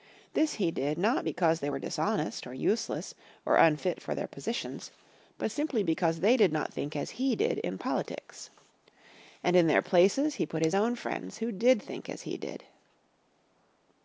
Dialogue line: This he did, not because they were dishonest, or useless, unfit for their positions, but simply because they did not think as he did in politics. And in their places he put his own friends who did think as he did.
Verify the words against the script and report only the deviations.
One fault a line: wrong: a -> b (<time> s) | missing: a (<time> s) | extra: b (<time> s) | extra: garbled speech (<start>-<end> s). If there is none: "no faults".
extra: or (3.5 s)